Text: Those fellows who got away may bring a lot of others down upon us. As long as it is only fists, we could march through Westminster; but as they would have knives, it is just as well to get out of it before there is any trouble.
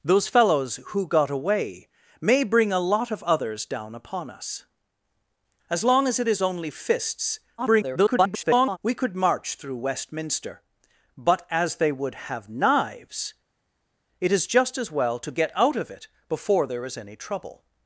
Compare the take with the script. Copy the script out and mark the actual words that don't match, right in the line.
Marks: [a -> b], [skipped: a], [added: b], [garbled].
Those fellows who got away may bring a lot of others down upon us. As long as it is only fists, [garbled] we could march through Westminster; but as they would have knives, it is just as well to get out of it before there is any trouble.